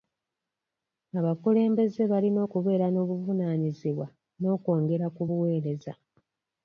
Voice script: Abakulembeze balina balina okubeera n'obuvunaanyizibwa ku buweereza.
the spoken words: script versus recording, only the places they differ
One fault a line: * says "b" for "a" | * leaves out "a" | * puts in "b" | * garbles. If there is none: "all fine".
* leaves out "balina"
* puts in "n'okwongera"